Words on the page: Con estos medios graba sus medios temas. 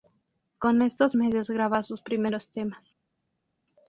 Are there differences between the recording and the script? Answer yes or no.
yes